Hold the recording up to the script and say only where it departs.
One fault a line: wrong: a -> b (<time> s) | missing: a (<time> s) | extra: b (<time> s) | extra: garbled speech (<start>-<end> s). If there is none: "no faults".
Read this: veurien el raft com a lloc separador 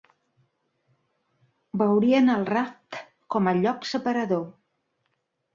no faults